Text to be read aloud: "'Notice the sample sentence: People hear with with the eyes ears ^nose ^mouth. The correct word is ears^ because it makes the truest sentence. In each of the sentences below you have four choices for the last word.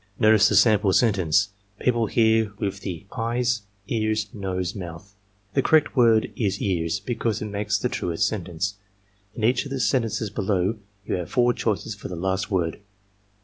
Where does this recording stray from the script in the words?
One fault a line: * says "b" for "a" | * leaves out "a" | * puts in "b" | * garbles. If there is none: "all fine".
* leaves out "with"